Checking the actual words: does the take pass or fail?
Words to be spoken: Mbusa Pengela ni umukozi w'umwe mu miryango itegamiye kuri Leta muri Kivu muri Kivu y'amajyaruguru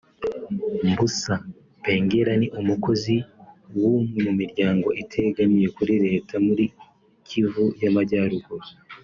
fail